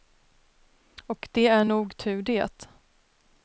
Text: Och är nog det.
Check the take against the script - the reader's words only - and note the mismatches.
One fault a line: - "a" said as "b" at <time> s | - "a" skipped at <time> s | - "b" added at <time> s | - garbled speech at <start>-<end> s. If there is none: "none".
- "det" added at 1.3 s
- "tur" added at 2.0 s